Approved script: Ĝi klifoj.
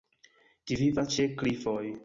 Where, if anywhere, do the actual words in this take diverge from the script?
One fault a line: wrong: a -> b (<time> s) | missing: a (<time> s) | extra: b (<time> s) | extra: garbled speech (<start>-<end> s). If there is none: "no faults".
extra: vivas ĉe (0.8 s)